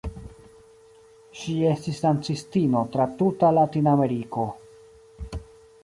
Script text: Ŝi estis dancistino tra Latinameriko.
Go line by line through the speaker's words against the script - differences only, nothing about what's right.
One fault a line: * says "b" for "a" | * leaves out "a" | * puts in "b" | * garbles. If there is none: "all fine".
* puts in "tuta"